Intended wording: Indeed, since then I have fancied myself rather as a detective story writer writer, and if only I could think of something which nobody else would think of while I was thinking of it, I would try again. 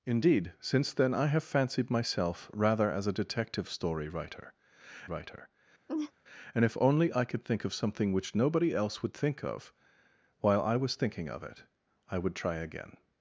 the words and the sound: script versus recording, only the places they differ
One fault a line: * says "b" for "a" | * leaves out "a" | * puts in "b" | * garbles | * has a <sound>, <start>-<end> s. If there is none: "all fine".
* has a laugh, 5.9-6.1 s